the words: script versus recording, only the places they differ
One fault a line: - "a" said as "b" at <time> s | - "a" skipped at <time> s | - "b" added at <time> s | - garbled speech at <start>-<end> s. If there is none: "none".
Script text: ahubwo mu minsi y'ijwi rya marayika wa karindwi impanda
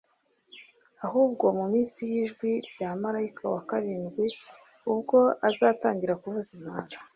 - "ubwo azatangira kuvuza" added at 4.9 s